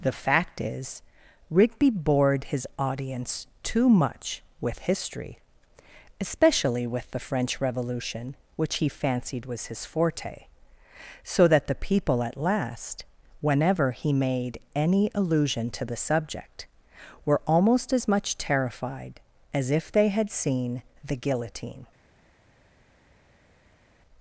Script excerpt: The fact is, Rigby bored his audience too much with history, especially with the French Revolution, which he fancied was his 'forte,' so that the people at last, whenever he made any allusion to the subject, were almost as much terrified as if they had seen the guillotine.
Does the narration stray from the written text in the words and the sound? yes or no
no